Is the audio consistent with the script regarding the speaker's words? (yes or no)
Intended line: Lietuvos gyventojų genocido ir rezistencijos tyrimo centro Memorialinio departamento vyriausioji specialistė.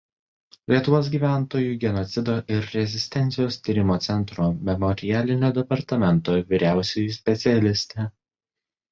yes